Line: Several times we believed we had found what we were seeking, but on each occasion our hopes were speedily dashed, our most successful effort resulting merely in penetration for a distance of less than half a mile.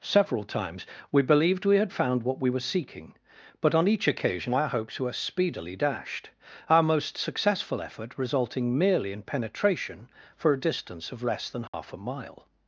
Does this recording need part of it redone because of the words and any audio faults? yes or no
yes